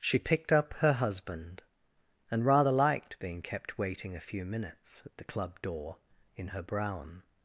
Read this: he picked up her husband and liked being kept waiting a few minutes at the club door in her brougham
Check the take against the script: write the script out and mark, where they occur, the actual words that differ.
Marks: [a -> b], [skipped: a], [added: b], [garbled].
[he -> she] picked up her husband and [added: rather] liked being kept waiting a few minutes at the club door in her brougham